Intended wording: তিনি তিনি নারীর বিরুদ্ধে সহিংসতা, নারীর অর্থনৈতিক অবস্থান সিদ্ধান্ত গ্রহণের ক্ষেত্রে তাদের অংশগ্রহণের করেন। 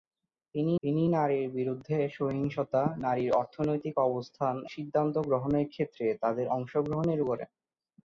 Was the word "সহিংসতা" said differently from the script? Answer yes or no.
no